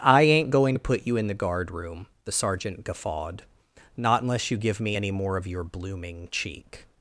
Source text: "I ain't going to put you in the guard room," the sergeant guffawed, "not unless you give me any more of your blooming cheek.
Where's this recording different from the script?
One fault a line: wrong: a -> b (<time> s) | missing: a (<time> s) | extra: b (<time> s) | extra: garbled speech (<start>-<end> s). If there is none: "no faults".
no faults